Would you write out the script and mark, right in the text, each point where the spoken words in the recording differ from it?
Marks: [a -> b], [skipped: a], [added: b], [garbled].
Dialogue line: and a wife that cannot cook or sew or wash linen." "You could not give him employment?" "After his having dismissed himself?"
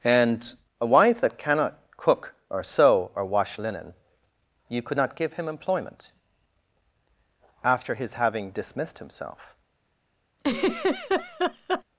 and a wife that cannot cook or sew or wash linen." "You could not give him employment?" "After his having dismissed himself?"